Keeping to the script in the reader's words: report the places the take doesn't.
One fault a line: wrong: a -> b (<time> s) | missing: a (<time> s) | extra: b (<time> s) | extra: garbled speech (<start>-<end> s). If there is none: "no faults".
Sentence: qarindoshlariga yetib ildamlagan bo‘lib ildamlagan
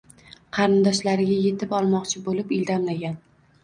wrong: ildamlagan -> olmoqchi (1.8 s)